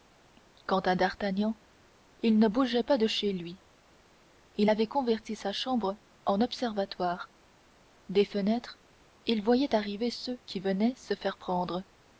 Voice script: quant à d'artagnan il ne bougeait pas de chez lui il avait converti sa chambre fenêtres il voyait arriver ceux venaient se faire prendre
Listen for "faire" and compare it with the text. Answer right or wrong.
right